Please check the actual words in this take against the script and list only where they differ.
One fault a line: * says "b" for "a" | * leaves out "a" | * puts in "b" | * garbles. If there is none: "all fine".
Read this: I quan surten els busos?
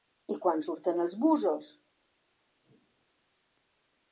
all fine